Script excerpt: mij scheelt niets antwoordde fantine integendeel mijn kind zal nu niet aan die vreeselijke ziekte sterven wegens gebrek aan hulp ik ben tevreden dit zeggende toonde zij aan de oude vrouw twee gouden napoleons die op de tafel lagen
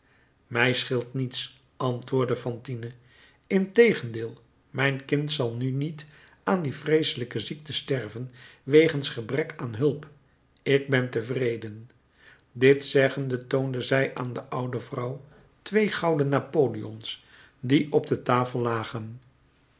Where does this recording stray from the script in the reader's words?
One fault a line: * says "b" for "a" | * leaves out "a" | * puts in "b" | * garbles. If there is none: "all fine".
all fine